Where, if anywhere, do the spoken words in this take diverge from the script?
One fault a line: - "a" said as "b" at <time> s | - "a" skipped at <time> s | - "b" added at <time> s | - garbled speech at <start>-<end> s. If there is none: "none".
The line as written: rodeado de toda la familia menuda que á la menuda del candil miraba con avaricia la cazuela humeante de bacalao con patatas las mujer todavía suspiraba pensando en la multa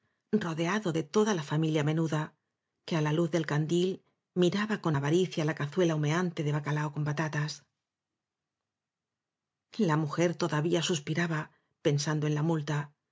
- "menuda" said as "luz" at 3.1 s
- "las" said as "la" at 9.8 s